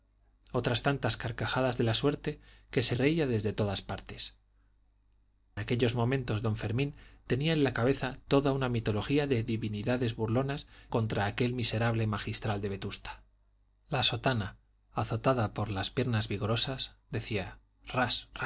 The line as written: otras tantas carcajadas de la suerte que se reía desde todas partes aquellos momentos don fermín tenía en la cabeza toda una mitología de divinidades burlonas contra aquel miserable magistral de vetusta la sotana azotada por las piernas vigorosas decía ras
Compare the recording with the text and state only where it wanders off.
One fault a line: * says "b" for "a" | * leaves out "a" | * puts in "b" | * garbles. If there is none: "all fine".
all fine